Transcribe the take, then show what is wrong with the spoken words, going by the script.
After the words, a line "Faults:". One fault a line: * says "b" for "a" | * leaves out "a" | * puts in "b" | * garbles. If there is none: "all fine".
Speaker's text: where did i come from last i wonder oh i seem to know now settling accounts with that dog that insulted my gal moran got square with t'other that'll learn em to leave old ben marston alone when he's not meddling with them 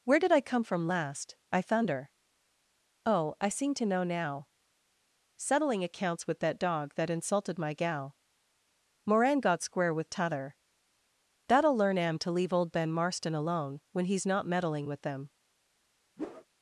where did i come from last i thunder oh i seem to know now settling accounts with that dog that insulted my gal moran got square with t'other that'll learn em to leave old ben marston alone when he's not meddling with them
Faults:
* says "thunder" for "wonder"